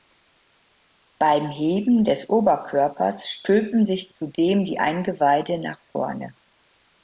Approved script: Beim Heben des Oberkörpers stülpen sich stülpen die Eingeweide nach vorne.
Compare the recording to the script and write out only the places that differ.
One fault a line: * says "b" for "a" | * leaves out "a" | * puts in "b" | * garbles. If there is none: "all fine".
* says "zudem" for "stülpen"